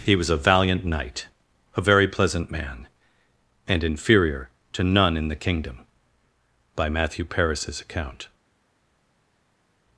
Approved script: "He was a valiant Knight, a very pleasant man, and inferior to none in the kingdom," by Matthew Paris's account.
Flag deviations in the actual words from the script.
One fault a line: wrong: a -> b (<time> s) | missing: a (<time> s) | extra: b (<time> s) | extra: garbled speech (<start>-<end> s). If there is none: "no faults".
no faults